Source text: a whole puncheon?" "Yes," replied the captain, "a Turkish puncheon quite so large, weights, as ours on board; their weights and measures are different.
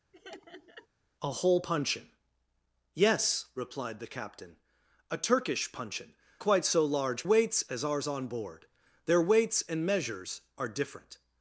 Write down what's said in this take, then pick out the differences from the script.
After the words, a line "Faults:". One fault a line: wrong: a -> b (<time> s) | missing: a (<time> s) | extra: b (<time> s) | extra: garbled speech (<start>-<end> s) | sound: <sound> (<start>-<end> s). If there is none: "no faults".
a whole puncheon?" "Yes," replied the captain, "a Turkish puncheon quite so large, weights, as ours on board; their weights and measures are different.
Faults:
sound: laugh (0.1-0.9 s)